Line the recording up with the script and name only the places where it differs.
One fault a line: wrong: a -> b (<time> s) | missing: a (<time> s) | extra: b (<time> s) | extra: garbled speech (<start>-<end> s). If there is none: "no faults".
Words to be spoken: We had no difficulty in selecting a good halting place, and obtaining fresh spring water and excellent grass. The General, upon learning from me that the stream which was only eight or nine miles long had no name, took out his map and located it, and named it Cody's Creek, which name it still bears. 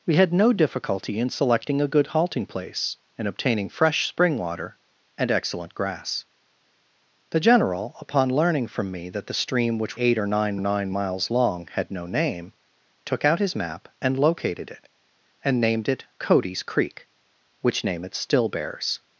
missing: was only (10.0 s)
extra: nine (10.6 s)